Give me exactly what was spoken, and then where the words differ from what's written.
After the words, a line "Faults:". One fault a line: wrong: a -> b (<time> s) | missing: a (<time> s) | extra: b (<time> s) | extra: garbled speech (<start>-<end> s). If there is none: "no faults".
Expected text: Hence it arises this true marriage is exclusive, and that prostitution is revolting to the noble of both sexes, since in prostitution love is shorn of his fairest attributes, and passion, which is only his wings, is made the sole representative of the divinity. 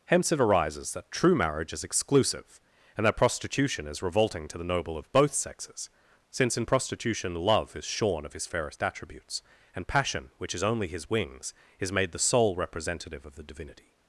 Hence it arises that true marriage is exclusive, and that prostitution is revolting to the noble of both sexes, since in prostitution love is shorn of his fairest attributes, and passion, which is only his wings, is made the sole representative of the divinity.
Faults:
wrong: this -> that (0.9 s)